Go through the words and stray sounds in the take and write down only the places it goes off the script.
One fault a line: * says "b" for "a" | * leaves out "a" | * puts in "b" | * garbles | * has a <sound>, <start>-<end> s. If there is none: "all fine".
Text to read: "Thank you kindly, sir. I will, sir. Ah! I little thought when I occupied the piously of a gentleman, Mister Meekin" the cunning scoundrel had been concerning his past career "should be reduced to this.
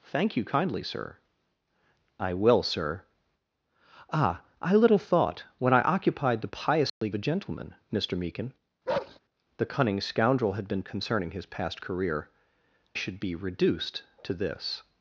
* has a dropout, 6.9-7.0 s
* has a bark, 8.9-9.2 s